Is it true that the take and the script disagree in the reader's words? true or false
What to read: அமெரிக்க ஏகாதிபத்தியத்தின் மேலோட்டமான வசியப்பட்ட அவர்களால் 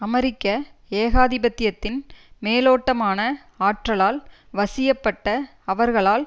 true